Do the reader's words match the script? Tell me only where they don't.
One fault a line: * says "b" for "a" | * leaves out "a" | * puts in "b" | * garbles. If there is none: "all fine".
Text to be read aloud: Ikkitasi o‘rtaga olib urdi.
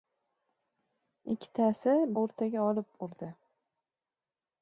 all fine